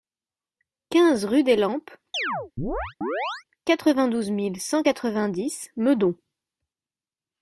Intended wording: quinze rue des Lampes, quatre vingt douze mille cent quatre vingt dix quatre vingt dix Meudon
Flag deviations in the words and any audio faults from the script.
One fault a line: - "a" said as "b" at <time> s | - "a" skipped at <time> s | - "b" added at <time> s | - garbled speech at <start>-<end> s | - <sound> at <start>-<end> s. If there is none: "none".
- chirp at 2.1-3.4 s
- "quatre vingt dix" skipped at 5.7 s